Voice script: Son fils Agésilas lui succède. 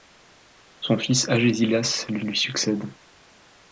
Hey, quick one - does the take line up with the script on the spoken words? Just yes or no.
no